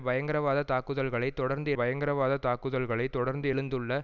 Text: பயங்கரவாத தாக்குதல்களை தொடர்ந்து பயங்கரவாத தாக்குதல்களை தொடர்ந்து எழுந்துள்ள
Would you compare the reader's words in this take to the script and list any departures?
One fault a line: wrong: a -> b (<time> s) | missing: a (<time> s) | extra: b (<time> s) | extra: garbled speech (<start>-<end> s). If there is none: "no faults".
no faults